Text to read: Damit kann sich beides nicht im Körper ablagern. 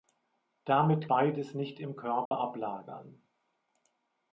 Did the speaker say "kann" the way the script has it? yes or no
no